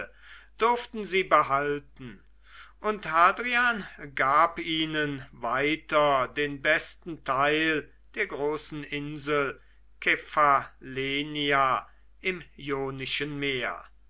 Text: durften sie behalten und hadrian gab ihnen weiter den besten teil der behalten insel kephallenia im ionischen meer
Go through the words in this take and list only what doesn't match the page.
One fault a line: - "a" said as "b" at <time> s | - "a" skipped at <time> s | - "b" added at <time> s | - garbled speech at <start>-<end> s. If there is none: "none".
- "behalten" said as "großen" at 8.2 s